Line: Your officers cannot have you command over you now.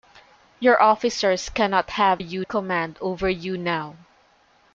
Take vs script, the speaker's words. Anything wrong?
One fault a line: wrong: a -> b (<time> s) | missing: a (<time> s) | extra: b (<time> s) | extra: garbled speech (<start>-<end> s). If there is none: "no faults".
no faults